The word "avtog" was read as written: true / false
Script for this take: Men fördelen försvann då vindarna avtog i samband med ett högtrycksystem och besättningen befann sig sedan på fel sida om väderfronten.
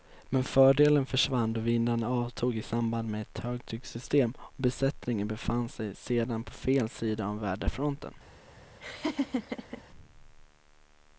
true